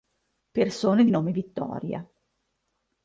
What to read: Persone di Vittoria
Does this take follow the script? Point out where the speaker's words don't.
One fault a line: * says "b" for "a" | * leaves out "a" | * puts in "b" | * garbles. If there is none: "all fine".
* puts in "nome"